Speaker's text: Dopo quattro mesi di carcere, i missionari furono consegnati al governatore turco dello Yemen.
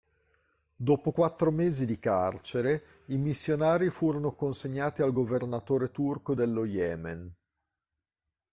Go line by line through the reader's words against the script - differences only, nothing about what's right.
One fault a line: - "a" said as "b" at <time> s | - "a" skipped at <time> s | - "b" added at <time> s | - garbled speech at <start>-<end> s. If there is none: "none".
none